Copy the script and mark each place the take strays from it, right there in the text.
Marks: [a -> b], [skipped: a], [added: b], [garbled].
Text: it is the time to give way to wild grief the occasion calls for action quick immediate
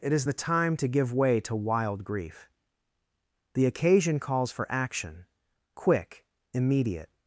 it is the time to give way to wild grief the occasion calls for action quick immediate